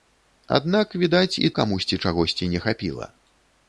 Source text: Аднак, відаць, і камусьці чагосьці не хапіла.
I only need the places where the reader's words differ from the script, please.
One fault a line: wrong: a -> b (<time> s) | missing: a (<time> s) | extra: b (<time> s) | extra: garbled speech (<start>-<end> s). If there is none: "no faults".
no faults